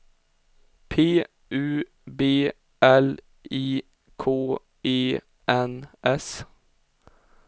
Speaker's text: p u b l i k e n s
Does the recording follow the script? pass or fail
pass